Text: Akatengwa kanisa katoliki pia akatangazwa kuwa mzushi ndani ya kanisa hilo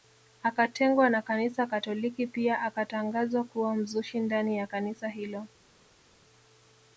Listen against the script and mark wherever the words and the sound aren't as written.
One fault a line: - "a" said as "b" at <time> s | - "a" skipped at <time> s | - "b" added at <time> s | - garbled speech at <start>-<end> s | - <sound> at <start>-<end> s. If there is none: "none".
- "na" added at 1.1 s